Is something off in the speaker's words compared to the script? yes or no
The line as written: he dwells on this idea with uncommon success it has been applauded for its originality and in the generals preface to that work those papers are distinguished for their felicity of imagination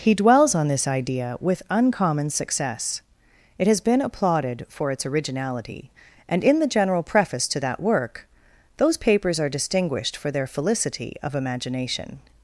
yes